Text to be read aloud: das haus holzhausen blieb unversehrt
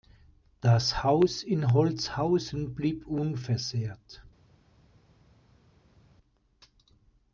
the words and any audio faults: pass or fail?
fail